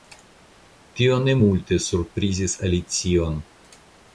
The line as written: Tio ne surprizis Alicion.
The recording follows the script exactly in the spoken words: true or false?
false